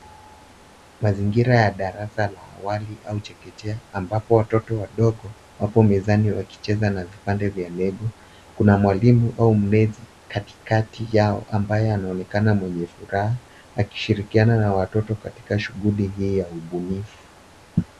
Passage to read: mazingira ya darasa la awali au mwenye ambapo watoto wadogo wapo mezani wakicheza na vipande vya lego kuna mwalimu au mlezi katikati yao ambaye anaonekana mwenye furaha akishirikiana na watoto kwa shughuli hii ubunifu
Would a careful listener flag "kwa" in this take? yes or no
yes